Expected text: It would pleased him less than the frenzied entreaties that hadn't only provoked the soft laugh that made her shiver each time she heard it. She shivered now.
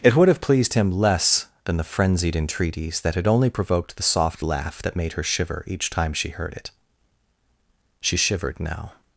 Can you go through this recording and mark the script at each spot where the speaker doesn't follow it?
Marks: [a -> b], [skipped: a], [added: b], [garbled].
It would [added: have] pleased him less than the frenzied entreaties that [hadn't -> had] only provoked the soft laugh that made her shiver each time she heard it. She shivered now.